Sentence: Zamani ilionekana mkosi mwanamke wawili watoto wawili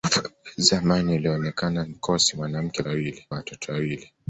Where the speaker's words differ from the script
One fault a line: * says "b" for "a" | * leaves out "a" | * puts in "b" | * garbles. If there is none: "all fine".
all fine